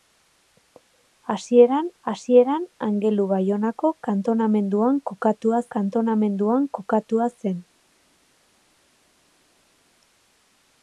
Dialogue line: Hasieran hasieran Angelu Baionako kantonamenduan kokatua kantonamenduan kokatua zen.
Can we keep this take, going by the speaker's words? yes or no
yes